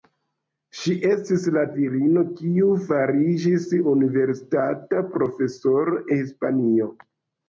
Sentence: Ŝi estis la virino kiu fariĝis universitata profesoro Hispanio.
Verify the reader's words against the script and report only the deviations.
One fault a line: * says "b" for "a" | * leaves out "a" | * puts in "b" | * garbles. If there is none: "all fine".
all fine